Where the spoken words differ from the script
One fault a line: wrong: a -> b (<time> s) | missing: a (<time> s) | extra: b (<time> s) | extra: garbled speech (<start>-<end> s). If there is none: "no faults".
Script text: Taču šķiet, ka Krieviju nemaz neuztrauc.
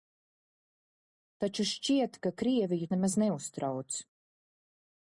no faults